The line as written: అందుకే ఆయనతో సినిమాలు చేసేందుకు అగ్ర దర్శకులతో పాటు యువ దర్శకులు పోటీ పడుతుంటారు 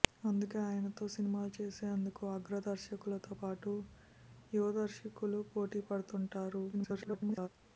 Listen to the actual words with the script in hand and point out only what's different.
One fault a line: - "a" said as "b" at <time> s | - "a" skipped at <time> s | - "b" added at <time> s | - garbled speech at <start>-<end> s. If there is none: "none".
- garbled speech at 6.7-7.5 s